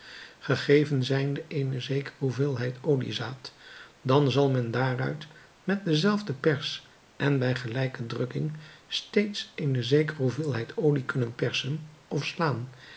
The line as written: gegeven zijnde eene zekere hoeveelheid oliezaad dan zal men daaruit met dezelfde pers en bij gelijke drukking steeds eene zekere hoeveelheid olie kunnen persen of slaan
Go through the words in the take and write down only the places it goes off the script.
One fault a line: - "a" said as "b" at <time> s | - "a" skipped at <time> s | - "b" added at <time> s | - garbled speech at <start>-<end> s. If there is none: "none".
none